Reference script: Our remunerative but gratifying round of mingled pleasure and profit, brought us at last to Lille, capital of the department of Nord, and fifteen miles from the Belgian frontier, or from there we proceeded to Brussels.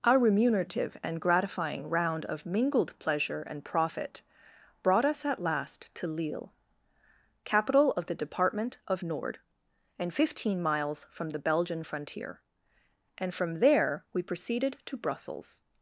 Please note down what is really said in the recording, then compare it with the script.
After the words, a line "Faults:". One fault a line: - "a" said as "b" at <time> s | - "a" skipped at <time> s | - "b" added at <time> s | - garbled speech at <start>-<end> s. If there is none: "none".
Our remunerative and gratifying round of mingled pleasure and profit, brought us at last to Lille, capital of the department of Nord, and fifteen miles from the Belgian frontier, and from there we proceeded to Brussels.
Faults:
- "but" said as "and" at 1.0 s
- "or" said as "and" at 13.2 s